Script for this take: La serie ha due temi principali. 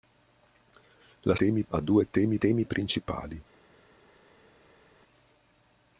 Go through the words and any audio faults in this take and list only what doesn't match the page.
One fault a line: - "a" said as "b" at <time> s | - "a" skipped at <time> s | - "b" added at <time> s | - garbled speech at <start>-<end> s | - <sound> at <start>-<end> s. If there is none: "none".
- "serie" said as "temi" at 1.3 s
- "temi" added at 2.4 s